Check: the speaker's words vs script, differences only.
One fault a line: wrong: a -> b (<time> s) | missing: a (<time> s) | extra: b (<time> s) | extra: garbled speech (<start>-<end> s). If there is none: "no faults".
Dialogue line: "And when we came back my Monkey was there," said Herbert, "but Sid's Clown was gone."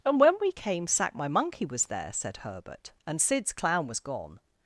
wrong: back -> sack (0.9 s)
wrong: but -> and (3.0 s)